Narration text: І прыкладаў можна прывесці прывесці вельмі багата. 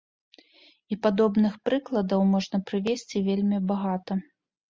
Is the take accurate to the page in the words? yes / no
no